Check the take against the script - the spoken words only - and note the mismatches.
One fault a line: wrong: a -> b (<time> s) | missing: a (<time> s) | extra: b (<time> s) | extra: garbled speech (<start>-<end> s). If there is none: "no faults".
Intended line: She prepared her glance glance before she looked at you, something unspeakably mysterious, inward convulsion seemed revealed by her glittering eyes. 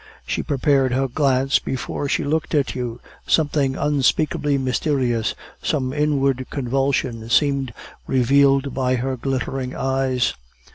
missing: glance (1.6 s)
extra: some (5.6 s)